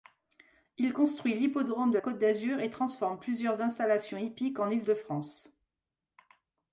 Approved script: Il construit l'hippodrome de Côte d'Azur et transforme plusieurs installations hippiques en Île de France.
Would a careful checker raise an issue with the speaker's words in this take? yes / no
no